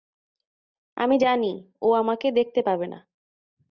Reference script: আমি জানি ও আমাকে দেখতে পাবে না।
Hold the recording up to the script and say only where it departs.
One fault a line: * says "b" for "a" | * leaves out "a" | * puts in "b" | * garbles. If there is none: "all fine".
all fine